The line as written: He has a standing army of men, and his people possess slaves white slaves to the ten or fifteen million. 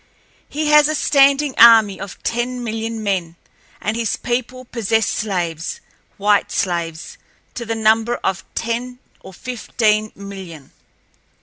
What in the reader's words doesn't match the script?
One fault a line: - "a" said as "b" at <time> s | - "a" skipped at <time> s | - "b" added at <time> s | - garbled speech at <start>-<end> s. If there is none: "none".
- "ten million" added at 2.2 s
- "number of" added at 7.7 s